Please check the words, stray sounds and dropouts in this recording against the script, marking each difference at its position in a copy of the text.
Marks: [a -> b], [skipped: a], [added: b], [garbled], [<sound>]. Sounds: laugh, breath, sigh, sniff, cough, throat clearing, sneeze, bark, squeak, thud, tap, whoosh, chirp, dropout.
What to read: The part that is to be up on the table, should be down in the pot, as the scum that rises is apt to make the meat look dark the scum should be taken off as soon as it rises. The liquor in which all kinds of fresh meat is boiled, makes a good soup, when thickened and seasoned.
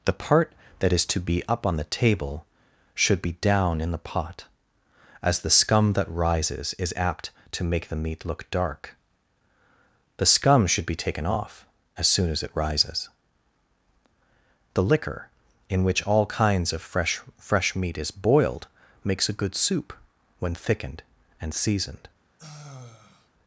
The part that is to be up on the table, should be down in the pot, as the scum that rises is apt to make the meat look dark the scum should be taken off as soon as it rises. The liquor in which all kinds of fresh [added: fresh] meat is boiled, makes a good soup, when thickened and seasoned. [sigh]